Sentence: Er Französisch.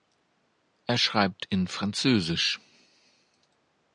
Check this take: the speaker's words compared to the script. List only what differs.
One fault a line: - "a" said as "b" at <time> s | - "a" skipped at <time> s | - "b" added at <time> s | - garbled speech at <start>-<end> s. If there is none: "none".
- "schreibt in" added at 1.0 s